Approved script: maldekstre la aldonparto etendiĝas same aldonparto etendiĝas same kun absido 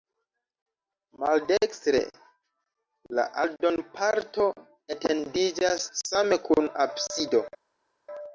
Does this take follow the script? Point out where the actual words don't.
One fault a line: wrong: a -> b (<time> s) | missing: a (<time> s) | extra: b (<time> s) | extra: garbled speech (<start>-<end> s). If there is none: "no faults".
missing: aldonparto etendiĝas same (6.4 s)